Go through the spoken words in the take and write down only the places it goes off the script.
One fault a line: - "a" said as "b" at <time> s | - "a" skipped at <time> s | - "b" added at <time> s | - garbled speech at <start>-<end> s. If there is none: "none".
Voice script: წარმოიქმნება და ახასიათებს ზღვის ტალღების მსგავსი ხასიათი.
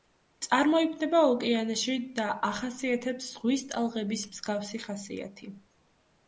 - "ოკეანეში" added at 1.3 s